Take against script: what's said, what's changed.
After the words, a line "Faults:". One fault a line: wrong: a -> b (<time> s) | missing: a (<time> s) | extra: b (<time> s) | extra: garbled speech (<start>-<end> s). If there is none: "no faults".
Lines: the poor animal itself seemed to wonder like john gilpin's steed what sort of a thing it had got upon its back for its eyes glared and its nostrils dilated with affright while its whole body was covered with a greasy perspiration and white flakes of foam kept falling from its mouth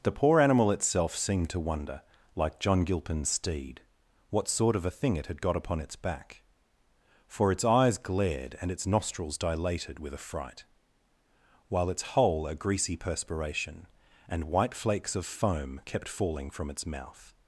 the poor animal itself seemed to wonder like john gilpin's steed what sort of a thing it had got upon its back for its eyes glared and its nostrils dilated with affright while its whole a greasy perspiration and white flakes of foam kept falling from its mouth
Faults:
missing: body was covered with (12.5 s)